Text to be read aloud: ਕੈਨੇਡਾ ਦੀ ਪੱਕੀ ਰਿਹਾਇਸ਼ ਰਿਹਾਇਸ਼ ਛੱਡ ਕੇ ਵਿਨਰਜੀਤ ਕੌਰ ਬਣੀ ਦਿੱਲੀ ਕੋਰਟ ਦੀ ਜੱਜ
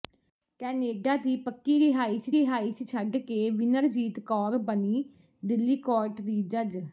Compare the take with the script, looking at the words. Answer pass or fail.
pass